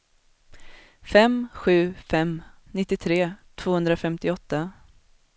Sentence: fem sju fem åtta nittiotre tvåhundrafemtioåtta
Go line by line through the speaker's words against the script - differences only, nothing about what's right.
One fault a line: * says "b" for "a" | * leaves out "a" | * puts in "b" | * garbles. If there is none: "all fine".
* leaves out "åtta"